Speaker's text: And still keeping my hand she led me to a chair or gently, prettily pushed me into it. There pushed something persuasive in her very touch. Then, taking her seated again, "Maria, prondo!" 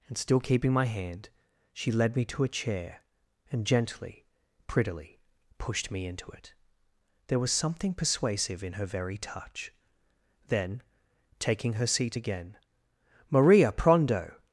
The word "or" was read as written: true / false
false